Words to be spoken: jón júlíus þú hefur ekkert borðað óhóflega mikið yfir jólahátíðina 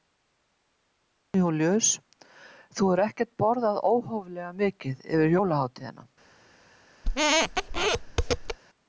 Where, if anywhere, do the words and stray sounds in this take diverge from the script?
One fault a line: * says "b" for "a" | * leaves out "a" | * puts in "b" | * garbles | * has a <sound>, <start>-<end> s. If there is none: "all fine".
* has a squeak, 7.0-8.6 s